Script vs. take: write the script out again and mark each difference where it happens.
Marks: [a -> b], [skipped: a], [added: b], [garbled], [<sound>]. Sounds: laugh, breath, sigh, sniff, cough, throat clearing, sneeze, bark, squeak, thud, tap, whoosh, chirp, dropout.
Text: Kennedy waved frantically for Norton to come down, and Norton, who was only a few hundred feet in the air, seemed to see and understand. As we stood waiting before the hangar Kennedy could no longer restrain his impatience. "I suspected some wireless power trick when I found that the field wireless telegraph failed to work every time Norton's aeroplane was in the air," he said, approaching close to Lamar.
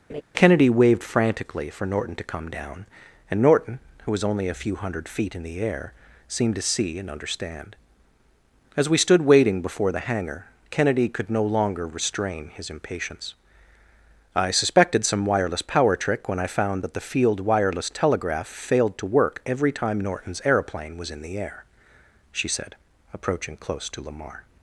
[laugh] Kennedy waved frantically for Norton to come down, and Norton, who was only a few hundred feet in the air, seemed to see and understand. As we stood waiting before the hangar Kennedy could no longer restrain his impatience. "I suspected some wireless power trick when I found that the field wireless telegraph failed to work every time Norton's aeroplane was in the air," [he -> she] said, approaching close to Lamar.